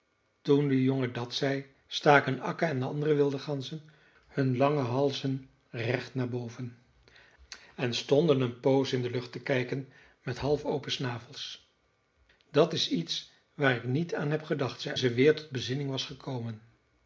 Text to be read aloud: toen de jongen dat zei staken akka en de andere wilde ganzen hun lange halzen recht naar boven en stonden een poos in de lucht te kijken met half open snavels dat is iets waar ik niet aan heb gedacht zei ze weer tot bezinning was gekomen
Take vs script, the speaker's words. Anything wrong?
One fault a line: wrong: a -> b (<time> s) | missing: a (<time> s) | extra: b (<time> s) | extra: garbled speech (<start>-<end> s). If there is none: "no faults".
no faults